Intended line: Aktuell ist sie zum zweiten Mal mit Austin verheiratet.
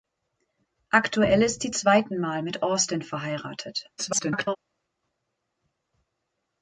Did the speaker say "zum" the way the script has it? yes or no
no